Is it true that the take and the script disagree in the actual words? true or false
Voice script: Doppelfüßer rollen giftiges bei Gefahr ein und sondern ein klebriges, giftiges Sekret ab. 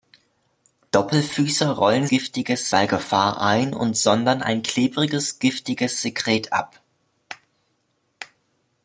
false